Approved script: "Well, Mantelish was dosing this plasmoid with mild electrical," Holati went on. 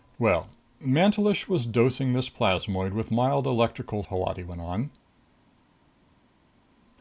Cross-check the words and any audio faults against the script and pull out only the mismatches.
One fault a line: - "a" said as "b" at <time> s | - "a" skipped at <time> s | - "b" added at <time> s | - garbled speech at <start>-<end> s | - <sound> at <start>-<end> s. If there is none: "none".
none